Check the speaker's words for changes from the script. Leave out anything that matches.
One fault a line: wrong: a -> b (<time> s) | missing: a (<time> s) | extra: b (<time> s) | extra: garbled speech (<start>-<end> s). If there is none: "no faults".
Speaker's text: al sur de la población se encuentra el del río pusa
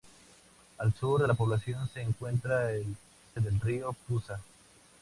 no faults